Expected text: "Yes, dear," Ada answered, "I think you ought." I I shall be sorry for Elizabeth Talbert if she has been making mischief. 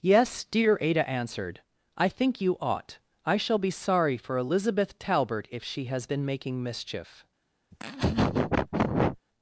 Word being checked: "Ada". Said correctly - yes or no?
yes